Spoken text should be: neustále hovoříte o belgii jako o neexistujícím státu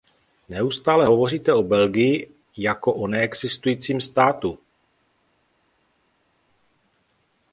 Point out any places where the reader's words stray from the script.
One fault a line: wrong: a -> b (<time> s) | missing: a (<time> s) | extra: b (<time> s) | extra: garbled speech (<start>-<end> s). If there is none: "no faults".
no faults